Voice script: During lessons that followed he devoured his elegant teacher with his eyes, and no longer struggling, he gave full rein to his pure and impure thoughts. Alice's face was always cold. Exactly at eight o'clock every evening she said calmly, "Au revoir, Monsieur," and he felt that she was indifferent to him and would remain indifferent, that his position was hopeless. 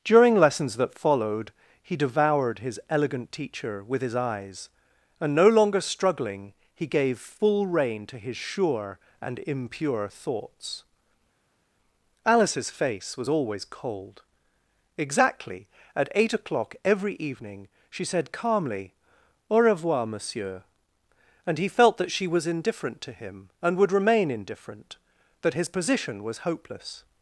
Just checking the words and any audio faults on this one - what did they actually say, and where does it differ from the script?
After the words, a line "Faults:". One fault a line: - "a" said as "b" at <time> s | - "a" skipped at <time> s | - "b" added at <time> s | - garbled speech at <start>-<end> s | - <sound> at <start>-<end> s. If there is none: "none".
During lessons that followed he devoured his elegant teacher with his eyes, and no longer struggling, he gave full rein to his sure and impure thoughts. Alice's face was always cold. Exactly at eight o'clock every evening she said calmly, "Au revoir, Monsieur," and he felt that she was indifferent to him and would remain indifferent, that his position was hopeless.
Faults:
- "pure" said as "sure" at 8.4 s